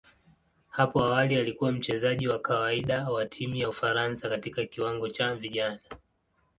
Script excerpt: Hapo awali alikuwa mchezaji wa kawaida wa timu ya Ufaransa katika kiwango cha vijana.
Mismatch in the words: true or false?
false